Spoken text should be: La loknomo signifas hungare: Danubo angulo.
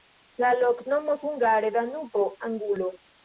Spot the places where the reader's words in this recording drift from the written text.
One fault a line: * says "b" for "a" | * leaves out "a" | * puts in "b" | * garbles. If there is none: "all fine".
* leaves out "signifas"